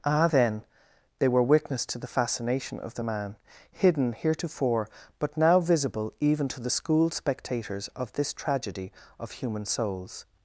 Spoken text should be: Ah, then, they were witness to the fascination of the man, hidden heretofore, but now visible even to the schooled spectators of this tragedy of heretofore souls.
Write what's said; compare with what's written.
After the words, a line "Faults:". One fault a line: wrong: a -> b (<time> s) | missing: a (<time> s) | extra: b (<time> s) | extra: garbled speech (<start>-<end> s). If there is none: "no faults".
Ah, then, they were witness to the fascination of the man, hidden heretofore, but now visible even to the schooled spectators of this tragedy of human souls.
Faults:
wrong: heretofore -> human (9.3 s)